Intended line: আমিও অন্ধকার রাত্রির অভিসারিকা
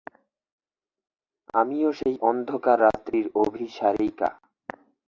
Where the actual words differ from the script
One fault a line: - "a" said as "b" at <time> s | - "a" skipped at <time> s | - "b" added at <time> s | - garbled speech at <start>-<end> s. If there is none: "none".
- "সেই" added at 2.0 s